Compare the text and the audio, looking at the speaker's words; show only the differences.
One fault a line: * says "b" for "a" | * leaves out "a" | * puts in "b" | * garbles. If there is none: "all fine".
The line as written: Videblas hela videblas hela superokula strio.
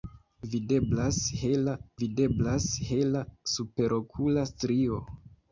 all fine